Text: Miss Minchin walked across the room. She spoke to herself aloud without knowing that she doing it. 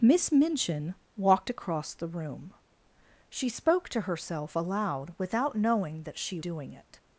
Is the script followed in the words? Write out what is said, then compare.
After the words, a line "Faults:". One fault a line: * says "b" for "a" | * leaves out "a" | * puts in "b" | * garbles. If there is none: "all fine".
Miss Minchin walked across the room. She spoke to herself aloud without knowing that she doing it.
Faults:
all fine